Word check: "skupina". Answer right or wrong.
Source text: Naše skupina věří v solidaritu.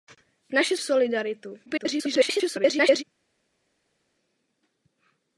wrong